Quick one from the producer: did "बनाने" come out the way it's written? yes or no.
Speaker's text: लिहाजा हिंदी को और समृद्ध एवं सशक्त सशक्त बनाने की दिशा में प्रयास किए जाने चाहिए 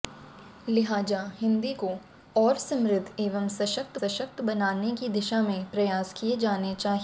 yes